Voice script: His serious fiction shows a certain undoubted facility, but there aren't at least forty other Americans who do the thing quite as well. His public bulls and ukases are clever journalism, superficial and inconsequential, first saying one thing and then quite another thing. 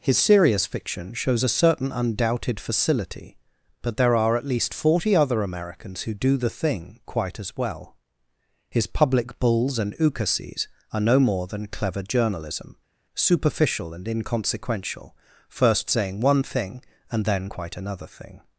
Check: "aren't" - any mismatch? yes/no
yes